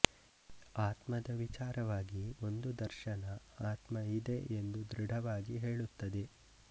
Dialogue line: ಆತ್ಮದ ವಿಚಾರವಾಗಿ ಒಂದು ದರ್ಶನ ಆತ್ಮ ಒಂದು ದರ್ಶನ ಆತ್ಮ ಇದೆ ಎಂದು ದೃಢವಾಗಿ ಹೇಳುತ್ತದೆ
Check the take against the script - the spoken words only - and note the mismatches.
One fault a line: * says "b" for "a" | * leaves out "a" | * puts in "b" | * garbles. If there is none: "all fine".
* leaves out "ಒಂದು ದರ್ಶನ ಆತ್ಮ"